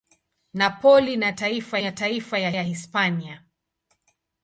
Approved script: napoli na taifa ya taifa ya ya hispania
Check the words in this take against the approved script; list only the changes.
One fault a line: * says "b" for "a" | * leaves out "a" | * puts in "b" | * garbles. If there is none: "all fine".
all fine